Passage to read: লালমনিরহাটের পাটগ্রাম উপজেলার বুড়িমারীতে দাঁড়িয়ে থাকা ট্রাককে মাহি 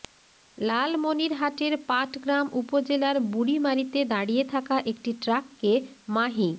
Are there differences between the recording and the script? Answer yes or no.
yes